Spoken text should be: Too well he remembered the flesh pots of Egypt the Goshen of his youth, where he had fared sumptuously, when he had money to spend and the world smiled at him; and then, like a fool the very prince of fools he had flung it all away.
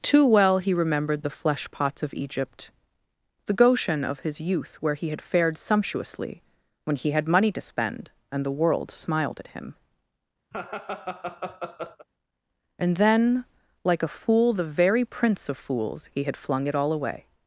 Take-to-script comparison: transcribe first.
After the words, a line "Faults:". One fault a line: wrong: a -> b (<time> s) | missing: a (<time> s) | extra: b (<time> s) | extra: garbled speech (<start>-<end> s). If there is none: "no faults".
Too well he remembered the flesh pots of Egypt the Goshen of his youth, where he had fared sumptuously, when he had money to spend and the world smiled at him; and then, like a fool the very prince of fools he had flung it all away.
Faults:
no faults